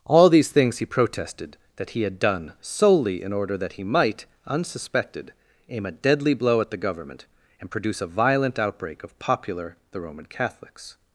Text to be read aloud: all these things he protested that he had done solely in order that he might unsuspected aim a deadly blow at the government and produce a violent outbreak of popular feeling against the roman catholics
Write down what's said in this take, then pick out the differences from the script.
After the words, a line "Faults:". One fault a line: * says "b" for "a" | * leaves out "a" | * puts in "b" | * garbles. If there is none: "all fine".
all these things he protested that he had done solely in order that he might unsuspected aim a deadly blow at the government and produce a violent outbreak of popular the roman catholics
Faults:
* leaves out "feeling against"